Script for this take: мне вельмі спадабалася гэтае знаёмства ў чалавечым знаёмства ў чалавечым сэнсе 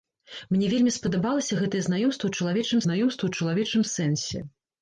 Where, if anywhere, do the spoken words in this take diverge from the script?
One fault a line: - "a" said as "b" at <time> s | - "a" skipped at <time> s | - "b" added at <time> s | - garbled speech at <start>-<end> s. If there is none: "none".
none